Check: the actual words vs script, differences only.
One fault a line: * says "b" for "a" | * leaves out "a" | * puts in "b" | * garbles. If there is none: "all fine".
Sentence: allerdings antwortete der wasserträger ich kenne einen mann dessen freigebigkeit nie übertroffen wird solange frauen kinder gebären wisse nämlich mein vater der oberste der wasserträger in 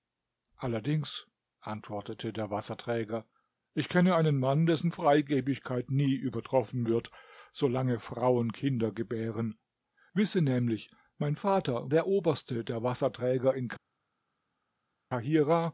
all fine